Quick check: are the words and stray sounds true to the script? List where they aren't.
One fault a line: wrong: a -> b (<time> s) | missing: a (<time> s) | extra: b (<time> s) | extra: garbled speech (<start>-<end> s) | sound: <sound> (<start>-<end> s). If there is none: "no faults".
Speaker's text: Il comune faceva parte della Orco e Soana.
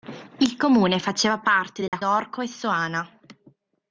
sound: dropout (1.9-1.9 s)